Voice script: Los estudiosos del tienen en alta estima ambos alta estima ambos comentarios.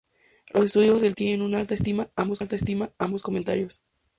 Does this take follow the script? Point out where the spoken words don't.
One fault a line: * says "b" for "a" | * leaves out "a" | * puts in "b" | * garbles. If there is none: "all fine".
all fine